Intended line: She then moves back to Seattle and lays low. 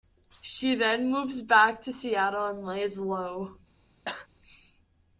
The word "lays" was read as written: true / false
true